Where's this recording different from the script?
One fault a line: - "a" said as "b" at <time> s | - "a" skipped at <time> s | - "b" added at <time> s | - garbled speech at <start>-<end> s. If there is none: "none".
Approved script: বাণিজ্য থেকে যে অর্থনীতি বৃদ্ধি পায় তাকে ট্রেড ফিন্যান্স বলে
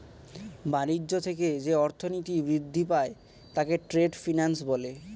none